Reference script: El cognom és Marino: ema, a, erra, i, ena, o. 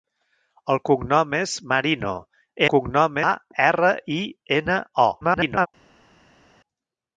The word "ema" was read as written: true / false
false